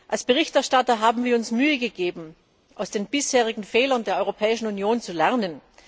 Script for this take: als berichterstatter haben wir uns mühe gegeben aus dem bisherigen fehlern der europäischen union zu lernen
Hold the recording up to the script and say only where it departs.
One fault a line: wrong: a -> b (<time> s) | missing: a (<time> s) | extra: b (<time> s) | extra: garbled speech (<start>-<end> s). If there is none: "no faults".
wrong: dem -> den (2.9 s)